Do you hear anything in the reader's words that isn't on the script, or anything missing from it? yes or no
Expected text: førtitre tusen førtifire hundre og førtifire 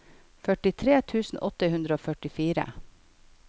yes